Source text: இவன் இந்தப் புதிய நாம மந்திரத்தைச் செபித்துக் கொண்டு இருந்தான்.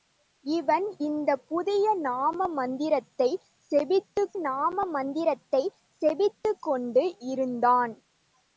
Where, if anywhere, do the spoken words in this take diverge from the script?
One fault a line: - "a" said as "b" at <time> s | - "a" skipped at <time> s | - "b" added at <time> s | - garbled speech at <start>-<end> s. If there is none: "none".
- "நாம மந்திரத்தைச் செபித்துக்" added at 4.4 s